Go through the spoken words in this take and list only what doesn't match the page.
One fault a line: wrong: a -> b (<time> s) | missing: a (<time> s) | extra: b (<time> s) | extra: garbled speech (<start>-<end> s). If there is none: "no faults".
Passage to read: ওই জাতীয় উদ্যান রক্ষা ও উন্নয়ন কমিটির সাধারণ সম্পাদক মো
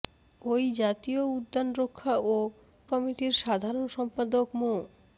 missing: উন্নয়ন (2.4 s)